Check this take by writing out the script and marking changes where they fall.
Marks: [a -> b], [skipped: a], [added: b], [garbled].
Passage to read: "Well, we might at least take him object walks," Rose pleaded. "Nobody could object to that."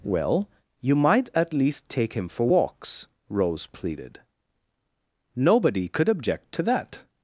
"Well, [we -> you] might at least take him [object -> for] walks," Rose pleaded. "Nobody could object to that."